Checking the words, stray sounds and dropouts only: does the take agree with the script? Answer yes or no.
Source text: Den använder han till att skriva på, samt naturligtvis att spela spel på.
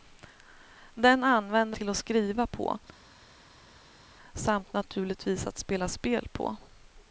no